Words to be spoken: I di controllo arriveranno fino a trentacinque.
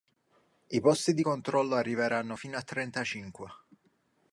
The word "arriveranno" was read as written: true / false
true